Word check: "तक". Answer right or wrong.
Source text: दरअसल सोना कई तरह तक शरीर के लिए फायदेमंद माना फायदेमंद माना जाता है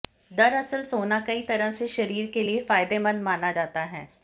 wrong